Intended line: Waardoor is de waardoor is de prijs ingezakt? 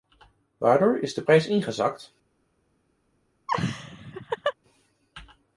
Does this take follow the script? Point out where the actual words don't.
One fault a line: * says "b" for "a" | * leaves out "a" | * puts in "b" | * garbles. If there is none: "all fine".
* leaves out "waardoor is de"